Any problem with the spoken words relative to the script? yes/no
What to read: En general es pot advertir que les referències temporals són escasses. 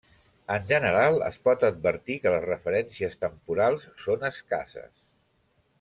no